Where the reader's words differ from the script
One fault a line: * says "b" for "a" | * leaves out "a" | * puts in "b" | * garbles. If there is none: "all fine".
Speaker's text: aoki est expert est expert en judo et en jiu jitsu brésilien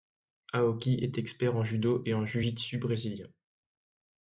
* leaves out "est expert"